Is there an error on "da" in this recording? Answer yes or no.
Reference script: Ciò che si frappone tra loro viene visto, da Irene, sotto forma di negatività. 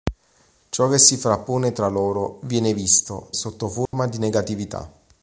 yes